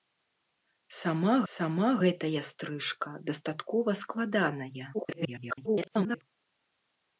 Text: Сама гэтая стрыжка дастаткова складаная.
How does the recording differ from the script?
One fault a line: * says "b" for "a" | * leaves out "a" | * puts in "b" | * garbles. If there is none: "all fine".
* puts in "сама"
* garbles